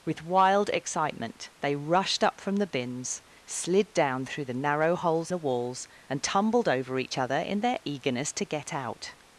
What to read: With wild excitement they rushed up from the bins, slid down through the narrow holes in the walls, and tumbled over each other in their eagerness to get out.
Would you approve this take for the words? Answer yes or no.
no